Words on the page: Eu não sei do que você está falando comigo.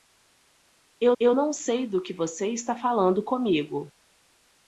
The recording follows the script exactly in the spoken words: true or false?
false